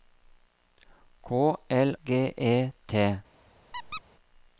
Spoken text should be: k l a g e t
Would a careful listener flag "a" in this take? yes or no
yes